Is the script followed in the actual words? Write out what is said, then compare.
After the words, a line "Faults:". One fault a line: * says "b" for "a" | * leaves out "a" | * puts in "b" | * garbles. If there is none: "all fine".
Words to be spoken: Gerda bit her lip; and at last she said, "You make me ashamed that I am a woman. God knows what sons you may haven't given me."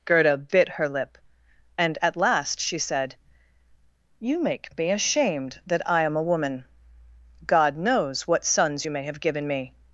Gerda bit her lip; and at last she said, "You make me ashamed that I am a woman. God knows what sons you may have given me."
Faults:
* says "have" for "haven't"